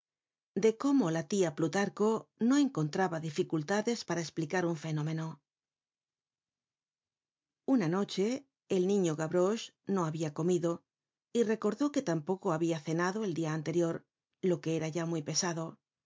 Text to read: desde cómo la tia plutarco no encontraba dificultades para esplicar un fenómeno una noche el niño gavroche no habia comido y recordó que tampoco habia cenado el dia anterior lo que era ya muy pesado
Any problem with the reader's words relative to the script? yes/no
yes